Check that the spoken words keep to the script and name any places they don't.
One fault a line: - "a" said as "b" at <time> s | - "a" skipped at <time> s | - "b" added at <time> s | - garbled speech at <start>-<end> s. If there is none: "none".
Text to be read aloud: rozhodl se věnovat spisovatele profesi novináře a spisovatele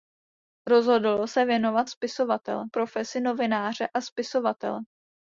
none